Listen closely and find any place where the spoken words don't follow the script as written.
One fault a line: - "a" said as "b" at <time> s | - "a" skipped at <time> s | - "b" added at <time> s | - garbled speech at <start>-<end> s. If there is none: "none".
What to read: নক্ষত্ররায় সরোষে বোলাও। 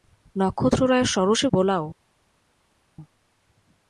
none